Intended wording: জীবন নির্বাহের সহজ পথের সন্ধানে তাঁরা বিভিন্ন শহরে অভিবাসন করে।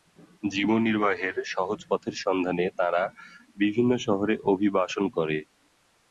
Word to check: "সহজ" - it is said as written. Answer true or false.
true